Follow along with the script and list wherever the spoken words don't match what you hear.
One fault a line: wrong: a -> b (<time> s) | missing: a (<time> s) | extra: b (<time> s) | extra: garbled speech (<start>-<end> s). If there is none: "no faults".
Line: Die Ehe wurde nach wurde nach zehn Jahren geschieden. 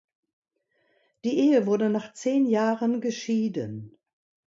missing: wurde nach (2.1 s)